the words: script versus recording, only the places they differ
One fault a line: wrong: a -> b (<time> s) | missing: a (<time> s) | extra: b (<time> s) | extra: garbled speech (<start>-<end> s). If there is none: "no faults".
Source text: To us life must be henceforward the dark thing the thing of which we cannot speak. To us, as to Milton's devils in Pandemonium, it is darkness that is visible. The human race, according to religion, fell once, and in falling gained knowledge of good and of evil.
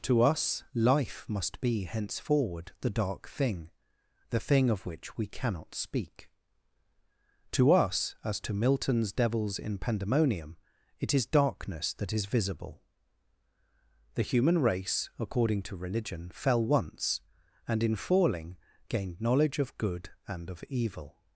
no faults